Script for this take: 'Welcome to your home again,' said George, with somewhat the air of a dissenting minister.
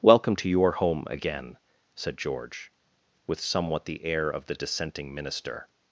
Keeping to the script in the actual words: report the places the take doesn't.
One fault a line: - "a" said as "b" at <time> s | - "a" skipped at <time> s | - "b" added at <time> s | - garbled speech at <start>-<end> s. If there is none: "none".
- "a" said as "the" at 4.5 s